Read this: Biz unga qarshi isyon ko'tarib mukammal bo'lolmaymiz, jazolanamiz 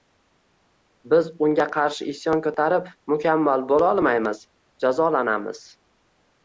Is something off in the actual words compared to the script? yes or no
no